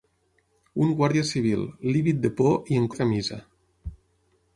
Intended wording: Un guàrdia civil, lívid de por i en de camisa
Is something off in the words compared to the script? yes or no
no